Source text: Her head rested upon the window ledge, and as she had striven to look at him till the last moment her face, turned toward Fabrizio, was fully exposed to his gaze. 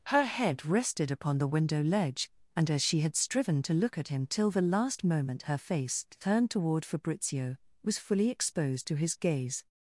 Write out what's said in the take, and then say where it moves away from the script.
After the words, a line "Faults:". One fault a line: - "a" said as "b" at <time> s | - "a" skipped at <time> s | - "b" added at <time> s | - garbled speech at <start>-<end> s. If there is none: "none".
Her head rested upon the window ledge, and as she had striven to look at him till the last moment her face, turned toward Fabrizio, was fully exposed to his gaze.
Faults:
none